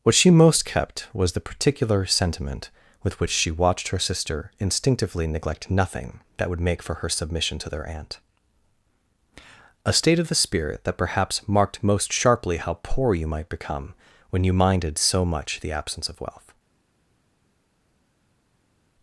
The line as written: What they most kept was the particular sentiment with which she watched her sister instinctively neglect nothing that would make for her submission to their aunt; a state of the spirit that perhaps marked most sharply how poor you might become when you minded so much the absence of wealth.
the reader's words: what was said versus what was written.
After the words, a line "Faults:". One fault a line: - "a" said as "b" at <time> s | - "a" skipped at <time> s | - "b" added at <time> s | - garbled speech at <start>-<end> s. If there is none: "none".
What she most kept was the particular sentiment with which she watched her sister instinctively neglect nothing that would make for her submission to their aunt; a state of the spirit that perhaps marked most sharply how poor you might become when you minded so much the absence of wealth.
Faults:
- "they" said as "she" at 0.1 s